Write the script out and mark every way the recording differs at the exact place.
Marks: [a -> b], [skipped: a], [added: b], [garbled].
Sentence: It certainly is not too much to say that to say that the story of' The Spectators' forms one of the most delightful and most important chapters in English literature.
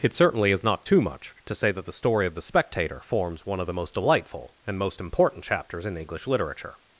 It certainly is not too much to say that [skipped: to say that] the story of' The [Spectators' -> Spectator] forms one of the most delightful and most important chapters in English literature.